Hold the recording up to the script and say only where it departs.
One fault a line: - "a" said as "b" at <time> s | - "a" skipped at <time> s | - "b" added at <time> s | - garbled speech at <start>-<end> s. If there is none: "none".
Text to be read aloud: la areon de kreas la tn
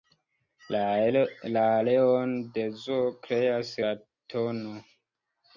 - "zoo" added at 2.9 s